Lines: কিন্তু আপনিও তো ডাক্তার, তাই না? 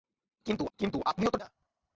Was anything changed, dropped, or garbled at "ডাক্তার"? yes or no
yes